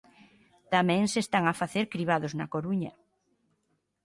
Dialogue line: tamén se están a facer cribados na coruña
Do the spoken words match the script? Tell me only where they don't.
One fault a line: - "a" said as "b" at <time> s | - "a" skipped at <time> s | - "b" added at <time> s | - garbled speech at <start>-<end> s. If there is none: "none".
none